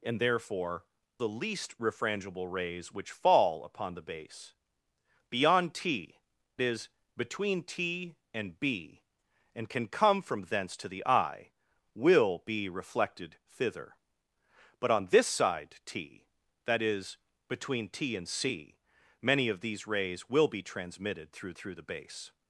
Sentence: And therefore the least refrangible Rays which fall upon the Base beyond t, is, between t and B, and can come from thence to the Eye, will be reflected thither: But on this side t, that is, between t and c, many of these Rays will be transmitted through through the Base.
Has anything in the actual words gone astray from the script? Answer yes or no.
no